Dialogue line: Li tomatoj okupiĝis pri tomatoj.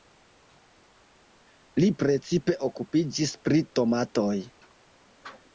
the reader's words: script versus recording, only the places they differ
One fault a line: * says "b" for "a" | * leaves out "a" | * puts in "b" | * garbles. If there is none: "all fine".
* says "precipe" for "tomatoj"